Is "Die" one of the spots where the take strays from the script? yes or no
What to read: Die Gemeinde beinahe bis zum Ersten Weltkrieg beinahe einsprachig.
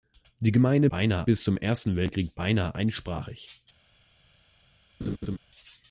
no